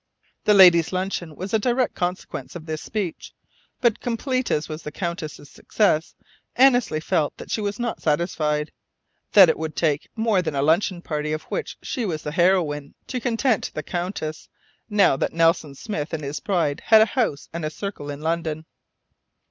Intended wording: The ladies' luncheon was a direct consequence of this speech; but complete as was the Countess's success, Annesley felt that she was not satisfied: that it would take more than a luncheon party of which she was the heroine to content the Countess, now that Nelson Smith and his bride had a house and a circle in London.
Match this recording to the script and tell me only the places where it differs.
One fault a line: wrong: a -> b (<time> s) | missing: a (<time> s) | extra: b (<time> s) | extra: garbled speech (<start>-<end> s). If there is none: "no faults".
no faults